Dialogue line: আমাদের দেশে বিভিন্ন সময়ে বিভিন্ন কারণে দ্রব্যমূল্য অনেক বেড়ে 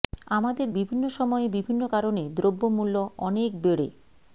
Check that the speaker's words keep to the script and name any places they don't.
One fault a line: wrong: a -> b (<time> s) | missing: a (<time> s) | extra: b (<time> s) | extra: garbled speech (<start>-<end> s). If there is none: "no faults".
missing: দেশে (0.7 s)